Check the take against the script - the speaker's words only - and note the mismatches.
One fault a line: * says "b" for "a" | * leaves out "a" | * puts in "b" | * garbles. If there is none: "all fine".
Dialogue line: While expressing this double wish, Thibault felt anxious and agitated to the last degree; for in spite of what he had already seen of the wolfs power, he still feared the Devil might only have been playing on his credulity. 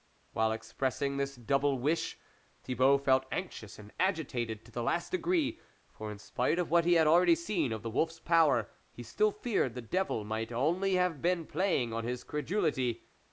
all fine